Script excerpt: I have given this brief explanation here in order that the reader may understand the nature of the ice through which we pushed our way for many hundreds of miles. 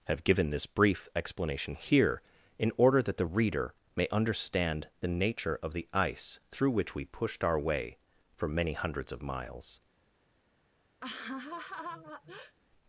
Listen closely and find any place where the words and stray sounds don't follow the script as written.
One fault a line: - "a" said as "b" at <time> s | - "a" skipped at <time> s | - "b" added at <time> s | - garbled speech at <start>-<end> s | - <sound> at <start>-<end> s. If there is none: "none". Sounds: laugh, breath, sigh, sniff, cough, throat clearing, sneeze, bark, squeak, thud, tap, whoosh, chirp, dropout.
- "I" skipped at 0.1 s
- laugh at 11.0-12.6 s